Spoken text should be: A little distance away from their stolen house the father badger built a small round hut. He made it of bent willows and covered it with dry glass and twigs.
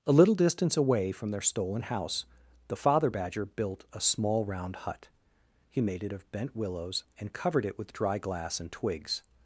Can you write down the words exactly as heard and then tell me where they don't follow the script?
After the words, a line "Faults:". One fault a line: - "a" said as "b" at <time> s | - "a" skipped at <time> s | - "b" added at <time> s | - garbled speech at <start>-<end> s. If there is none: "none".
A little distance away from their stolen house the father badger built a small round hut. He made it of bent willows and covered it with dry glass and twigs.
Faults:
none